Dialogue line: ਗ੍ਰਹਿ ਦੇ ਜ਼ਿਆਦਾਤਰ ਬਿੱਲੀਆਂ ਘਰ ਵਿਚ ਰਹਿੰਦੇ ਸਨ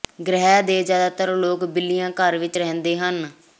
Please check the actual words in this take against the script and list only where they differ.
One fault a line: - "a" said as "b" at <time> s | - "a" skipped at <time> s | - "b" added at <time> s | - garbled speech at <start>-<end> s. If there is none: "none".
- "ਲੋਕ" added at 1.4 s
- "ਸਨ" said as "ਹਨ" at 3.0 s